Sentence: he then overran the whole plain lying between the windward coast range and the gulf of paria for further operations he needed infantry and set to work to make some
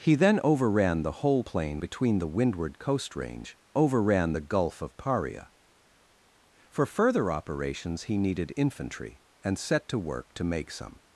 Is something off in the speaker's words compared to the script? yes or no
yes